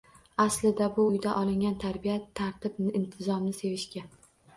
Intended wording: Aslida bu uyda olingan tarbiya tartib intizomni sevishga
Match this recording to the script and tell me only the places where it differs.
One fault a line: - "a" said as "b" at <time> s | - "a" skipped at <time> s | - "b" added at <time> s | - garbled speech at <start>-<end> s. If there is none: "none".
none